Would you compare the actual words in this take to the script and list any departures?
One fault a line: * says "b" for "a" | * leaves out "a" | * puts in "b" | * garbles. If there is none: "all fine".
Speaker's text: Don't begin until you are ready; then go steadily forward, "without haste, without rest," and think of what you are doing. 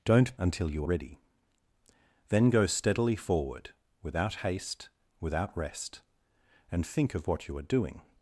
* leaves out "begin"
* leaves out "are"